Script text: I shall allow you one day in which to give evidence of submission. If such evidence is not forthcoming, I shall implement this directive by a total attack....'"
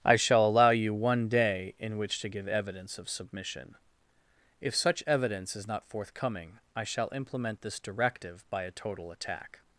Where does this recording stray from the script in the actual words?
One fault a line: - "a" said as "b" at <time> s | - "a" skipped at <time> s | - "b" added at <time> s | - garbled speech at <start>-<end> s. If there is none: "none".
none